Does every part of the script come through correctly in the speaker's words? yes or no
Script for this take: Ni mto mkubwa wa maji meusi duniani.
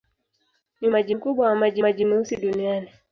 no